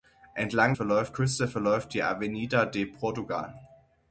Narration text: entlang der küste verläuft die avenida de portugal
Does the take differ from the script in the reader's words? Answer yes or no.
yes